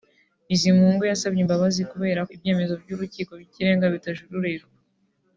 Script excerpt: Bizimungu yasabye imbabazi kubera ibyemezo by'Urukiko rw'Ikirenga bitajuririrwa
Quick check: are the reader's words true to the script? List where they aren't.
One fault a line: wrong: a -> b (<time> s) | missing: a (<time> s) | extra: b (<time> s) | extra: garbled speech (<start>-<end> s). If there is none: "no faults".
no faults